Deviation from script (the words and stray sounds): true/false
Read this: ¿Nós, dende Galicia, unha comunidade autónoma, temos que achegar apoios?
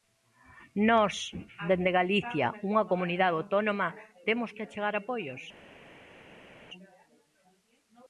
false